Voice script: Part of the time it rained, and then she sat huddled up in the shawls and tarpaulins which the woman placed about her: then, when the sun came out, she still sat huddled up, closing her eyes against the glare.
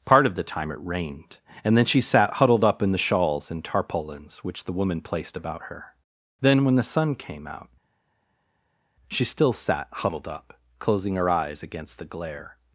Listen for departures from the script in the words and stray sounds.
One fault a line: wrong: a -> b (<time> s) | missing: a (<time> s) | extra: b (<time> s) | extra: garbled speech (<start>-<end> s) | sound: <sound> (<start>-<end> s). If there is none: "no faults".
no faults